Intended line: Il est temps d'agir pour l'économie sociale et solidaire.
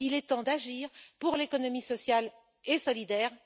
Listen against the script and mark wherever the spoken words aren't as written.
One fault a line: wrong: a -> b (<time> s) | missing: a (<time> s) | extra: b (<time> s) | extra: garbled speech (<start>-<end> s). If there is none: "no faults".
no faults